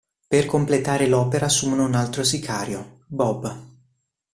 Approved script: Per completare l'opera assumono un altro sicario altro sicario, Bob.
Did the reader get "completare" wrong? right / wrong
right